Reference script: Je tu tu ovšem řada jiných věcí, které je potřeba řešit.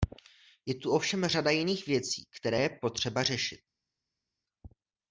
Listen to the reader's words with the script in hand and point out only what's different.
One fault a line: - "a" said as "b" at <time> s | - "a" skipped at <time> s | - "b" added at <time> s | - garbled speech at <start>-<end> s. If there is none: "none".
- "tu" skipped at 0.9 s